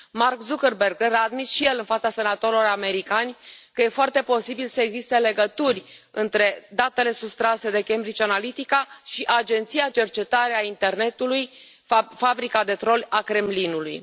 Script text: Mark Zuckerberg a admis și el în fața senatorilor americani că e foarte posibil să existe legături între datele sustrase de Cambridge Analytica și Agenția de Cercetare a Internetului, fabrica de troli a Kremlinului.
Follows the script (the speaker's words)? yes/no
no